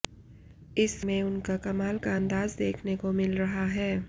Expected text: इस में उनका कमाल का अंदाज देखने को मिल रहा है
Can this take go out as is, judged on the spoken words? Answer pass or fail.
pass